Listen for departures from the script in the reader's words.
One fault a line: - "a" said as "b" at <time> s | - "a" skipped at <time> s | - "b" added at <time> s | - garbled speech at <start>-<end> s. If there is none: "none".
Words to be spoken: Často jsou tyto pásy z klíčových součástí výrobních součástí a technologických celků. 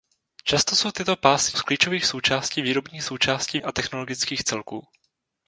none